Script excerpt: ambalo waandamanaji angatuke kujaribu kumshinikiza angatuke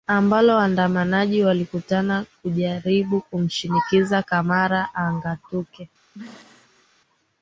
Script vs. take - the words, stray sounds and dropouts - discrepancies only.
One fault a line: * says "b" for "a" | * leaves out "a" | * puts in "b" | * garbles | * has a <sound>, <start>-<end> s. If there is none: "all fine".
* says "walikutana" for "angatuke"
* puts in "camara"
* has a throat clearing, 6.1-6.9 s